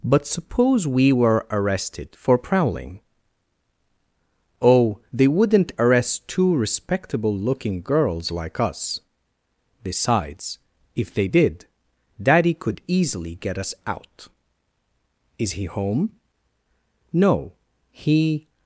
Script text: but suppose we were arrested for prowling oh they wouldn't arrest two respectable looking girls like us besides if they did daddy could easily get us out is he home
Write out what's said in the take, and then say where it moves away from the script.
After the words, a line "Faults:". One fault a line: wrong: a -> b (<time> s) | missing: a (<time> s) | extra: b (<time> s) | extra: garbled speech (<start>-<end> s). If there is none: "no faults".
but suppose we were arrested for prowling oh they wouldn't arrest two respectable looking girls like us besides if they did daddy could easily get us out is he home no he
Faults:
extra: no he (17.1 s)